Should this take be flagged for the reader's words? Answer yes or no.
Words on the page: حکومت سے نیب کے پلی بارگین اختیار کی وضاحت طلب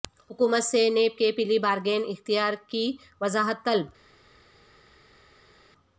no